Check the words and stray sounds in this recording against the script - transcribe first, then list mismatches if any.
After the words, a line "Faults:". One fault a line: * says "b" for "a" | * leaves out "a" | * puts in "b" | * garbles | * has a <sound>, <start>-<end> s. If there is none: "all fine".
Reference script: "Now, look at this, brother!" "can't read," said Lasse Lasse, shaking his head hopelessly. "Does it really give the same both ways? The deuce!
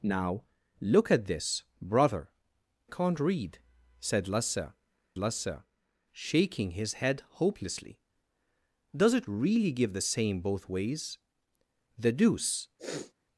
"Now, look at this, brother!" "can't read," said Lasse Lasse, shaking his head hopelessly. "Does it really give the same both ways? The deuce!
Faults:
* has a sniff, 12.8-13.1 s